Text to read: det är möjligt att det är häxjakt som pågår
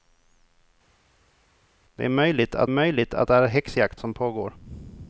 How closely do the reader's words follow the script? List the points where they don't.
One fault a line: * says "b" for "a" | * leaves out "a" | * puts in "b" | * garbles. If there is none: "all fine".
* puts in "möjligt att"